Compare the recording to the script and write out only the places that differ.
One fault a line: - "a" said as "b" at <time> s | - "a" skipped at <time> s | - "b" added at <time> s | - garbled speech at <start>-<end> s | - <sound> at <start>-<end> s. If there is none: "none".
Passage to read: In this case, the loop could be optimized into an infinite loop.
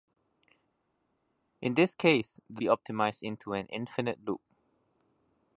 - "loop could" skipped at 2.6 s